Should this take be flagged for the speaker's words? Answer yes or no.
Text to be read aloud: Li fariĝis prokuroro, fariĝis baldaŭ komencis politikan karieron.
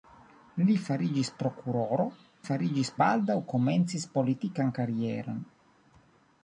no